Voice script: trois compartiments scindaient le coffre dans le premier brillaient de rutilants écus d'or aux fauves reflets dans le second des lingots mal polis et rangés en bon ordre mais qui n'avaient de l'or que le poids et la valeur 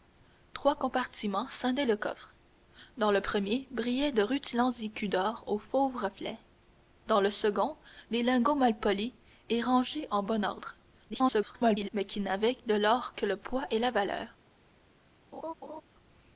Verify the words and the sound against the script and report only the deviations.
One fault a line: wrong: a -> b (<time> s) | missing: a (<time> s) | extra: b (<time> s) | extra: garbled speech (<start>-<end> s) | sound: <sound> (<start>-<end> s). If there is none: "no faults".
extra: garbled speech (11.1-11.9 s)
sound: laugh (15.3-15.8 s)